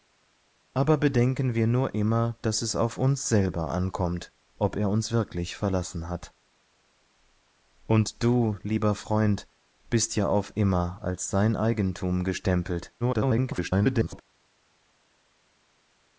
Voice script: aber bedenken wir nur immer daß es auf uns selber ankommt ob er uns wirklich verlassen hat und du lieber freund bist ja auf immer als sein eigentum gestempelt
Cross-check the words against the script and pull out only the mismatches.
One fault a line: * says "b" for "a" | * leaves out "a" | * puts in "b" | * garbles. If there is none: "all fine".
* garbles